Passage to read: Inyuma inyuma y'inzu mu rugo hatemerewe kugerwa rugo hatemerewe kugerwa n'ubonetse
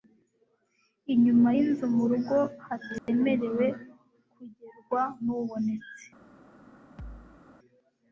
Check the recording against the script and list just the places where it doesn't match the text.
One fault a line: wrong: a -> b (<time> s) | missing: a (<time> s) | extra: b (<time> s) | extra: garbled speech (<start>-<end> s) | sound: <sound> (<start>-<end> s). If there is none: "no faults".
missing: inyuma (1.5 s)
sound: dropout (3.0-3.1 s)
missing: rugo hatemerewe kugerwa (5.0 s)
sound: thud (7.0-7.4 s)